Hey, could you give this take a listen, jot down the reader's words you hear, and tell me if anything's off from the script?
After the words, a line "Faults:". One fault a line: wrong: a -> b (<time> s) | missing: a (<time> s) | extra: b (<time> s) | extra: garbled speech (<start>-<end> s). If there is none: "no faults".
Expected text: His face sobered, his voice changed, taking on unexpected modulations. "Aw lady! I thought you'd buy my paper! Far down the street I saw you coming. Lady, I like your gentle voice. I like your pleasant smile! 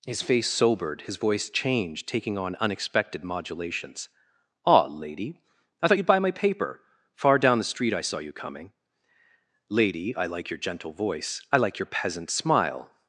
His face sobered, his voice changed, taking on unexpected modulations. "Aw lady! I thought you'd buy my paper! Far down the street I saw you coming. Lady, I like your gentle voice. I like your peasant smile!
Faults:
wrong: pleasant -> peasant (11.9 s)